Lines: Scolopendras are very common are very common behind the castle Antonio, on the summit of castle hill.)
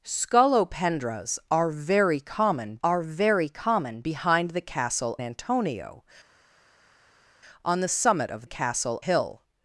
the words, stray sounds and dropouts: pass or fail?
pass